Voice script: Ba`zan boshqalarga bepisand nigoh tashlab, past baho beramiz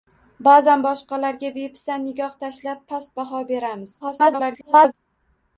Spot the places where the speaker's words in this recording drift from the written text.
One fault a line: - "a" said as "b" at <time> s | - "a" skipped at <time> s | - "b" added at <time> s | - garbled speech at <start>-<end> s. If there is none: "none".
- garbled speech at 4.0-4.9 s